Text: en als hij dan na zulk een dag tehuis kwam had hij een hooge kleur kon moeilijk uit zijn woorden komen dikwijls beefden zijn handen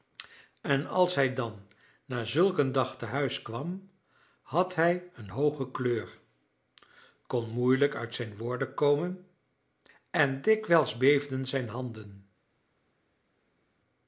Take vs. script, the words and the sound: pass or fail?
fail